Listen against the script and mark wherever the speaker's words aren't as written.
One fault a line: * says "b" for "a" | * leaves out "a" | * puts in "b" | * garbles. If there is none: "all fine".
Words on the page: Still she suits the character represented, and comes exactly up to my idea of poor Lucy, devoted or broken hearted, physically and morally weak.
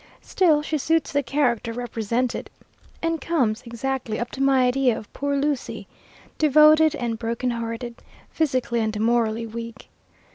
* says "and" for "or"